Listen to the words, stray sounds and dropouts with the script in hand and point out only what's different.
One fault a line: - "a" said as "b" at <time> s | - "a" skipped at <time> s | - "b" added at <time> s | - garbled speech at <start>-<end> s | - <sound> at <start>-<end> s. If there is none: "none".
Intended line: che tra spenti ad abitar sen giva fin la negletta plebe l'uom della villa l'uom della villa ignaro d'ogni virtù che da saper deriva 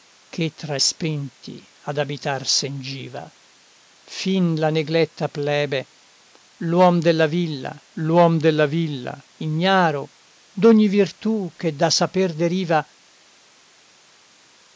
none